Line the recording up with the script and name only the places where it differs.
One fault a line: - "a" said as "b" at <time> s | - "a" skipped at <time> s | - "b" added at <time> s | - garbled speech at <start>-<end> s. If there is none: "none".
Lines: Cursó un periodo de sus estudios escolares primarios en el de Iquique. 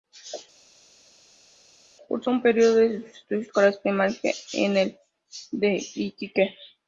none